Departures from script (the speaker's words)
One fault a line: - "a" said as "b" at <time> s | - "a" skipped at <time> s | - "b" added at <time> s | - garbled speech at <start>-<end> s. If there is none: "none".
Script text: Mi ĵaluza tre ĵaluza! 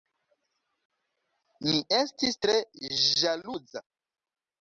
- "ĵaluza" said as "estis" at 2.0 s